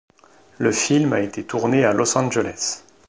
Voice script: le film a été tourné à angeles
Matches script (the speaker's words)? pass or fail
fail